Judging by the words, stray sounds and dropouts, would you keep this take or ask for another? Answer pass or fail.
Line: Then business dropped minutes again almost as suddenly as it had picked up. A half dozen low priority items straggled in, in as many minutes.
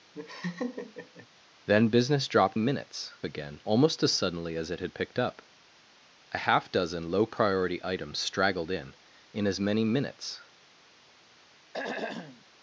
fail